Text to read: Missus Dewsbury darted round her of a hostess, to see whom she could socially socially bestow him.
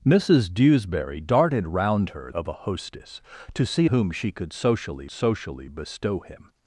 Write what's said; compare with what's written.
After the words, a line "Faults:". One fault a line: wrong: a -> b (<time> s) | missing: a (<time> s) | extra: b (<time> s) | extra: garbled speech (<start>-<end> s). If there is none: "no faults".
Missus Dewsbury darted round her of a hostess, to see whom she could socially socially bestow him.
Faults:
no faults